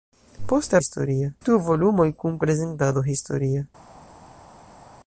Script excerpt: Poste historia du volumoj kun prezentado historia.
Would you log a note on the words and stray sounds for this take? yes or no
no